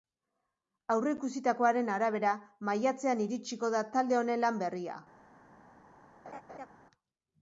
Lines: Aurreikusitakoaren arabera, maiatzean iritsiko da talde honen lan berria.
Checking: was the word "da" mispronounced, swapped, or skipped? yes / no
no